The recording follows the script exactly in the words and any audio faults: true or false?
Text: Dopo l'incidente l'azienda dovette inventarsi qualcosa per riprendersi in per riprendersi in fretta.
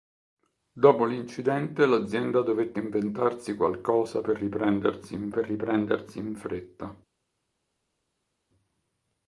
true